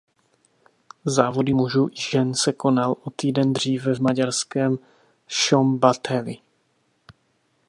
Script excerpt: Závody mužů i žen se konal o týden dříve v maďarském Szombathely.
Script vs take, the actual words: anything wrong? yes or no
no